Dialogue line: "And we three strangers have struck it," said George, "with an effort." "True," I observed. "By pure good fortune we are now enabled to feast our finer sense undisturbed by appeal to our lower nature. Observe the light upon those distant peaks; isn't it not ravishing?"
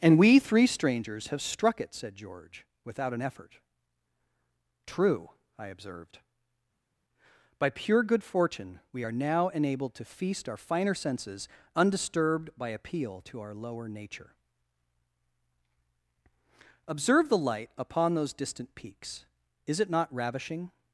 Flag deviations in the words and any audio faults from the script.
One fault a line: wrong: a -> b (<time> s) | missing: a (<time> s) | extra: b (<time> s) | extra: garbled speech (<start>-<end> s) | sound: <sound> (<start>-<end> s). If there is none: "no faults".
wrong: with -> without (2.8 s)
wrong: sense -> senses (10.9 s)
wrong: isn't -> is (19.7 s)